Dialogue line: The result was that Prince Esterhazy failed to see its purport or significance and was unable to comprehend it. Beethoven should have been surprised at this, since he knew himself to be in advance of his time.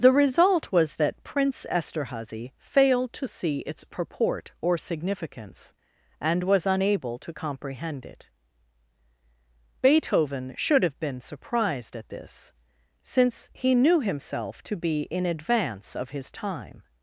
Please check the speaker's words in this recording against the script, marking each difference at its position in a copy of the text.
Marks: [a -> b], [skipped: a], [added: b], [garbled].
The result was that Prince Esterhazy failed to see its purport or significance and was unable to comprehend it. Beethoven should have been surprised at this, since he knew himself to be in advance of his time.